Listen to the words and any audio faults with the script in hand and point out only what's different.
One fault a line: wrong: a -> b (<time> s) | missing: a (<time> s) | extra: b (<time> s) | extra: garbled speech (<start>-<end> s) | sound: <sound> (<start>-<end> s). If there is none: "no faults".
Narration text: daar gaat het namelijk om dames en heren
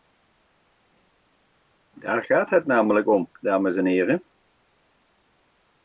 no faults